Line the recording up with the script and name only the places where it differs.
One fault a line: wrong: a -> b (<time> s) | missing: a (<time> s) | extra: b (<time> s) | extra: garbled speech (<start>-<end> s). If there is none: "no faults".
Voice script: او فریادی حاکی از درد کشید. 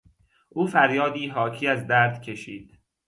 no faults